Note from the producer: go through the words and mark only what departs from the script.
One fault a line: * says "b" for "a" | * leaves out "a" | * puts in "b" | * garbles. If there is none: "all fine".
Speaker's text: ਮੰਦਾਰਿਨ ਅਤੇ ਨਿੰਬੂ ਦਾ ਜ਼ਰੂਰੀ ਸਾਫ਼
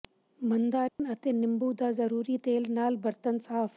* puts in "ਤੇਲ ਨਾਲ ਬਰਤਨ"